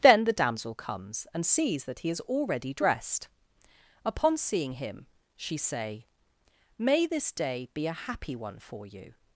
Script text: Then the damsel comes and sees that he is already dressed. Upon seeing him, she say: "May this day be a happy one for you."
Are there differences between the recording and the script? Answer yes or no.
no